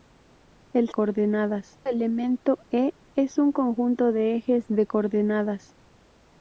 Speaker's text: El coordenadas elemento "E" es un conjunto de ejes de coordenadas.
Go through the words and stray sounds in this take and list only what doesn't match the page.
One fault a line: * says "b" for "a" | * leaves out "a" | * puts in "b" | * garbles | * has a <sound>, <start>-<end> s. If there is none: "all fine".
all fine